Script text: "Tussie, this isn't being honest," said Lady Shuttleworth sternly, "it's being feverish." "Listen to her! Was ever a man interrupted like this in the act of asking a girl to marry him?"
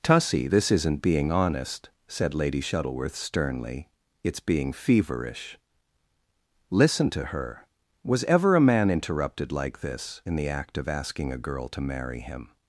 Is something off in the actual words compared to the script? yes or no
no